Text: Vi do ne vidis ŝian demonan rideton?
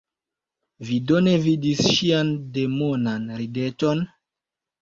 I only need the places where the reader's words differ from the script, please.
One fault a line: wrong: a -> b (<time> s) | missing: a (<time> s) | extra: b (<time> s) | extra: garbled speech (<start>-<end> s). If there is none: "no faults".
no faults